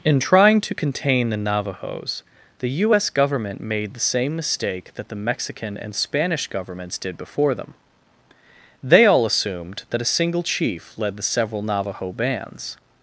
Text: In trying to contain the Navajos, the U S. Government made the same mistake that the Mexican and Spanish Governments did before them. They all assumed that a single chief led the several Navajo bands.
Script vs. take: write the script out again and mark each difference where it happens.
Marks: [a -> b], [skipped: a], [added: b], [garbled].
In trying to contain the Navajos, the U S. Government made the same mistake that the Mexican and Spanish Governments did before them. They all assumed that a single chief led the several Navajo bands.